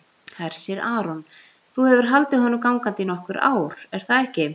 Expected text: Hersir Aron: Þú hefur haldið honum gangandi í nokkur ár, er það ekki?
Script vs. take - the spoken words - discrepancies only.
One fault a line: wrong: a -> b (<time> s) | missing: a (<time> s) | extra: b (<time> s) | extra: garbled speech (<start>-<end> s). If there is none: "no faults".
no faults